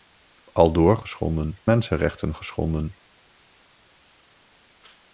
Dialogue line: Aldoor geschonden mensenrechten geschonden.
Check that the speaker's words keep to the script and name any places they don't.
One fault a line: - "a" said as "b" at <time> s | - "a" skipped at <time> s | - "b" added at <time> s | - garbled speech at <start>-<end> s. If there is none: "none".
none